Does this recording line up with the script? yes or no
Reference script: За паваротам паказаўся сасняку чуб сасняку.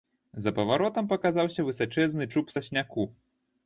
no